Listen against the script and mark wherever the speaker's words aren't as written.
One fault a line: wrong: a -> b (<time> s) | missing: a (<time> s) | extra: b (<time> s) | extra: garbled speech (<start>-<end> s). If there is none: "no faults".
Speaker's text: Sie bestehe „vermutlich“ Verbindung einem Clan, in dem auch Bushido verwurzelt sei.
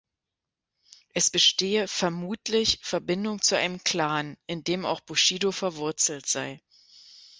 wrong: Sie -> Es (1.1 s)
extra: zu (3.4 s)